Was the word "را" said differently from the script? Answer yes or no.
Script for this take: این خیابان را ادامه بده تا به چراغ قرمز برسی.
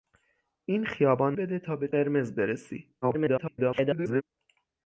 yes